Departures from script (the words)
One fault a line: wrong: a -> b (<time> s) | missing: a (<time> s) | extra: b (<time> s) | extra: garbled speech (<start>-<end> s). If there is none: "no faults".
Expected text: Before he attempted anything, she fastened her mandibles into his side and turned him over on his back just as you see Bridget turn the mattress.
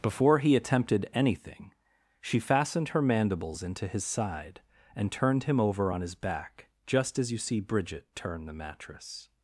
no faults